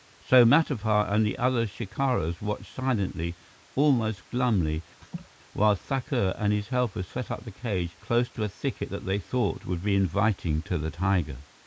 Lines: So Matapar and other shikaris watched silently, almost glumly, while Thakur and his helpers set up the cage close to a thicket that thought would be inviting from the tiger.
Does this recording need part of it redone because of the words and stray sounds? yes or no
yes